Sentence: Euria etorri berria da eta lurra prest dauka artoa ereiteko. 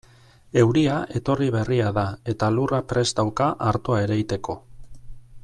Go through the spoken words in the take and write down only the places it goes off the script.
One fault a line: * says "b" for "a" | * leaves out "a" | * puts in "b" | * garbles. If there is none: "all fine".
all fine